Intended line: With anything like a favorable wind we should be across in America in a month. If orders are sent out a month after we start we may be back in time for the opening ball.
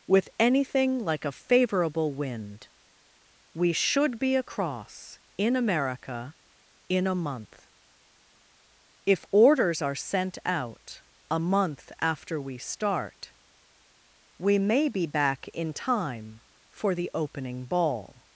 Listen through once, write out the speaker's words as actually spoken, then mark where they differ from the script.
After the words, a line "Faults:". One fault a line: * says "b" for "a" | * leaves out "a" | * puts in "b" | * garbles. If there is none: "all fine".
With anything like a favorable wind we should be across in America in a month. If orders are sent out a month after we start we may be back in time for the opening ball.
Faults:
all fine